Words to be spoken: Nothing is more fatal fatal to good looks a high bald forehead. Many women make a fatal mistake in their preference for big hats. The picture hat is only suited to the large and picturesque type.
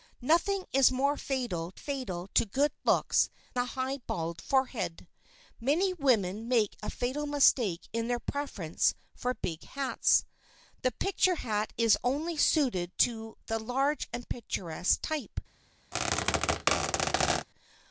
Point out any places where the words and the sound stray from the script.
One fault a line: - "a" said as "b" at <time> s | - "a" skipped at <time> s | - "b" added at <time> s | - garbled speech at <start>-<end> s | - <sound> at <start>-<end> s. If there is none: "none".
- squeak at 15.9-17.5 s